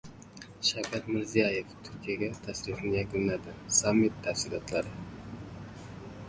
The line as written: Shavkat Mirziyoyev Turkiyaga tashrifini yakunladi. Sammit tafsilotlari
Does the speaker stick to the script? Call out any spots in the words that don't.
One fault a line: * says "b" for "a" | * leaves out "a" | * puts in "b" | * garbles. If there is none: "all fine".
all fine